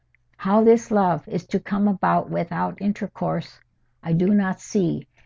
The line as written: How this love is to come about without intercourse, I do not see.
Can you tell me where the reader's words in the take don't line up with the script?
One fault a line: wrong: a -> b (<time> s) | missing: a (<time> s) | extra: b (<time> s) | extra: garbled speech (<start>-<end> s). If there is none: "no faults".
no faults